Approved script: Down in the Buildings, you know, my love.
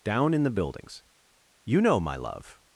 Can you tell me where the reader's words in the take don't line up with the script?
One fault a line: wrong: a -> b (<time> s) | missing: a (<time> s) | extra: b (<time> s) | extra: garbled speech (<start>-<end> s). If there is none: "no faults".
no faults